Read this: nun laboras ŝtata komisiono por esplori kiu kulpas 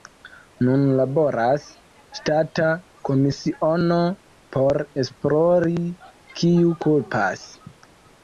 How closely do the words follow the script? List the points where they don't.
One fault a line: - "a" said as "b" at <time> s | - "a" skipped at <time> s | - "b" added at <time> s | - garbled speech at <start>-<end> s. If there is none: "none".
none